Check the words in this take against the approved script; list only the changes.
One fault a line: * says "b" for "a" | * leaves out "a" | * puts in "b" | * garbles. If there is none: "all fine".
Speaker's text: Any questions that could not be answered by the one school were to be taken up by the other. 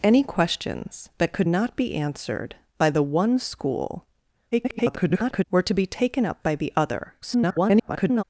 * garbles
* garbles